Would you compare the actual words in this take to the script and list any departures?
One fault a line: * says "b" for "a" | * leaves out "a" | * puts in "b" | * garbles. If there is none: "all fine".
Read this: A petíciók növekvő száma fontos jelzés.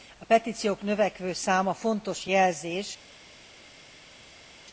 all fine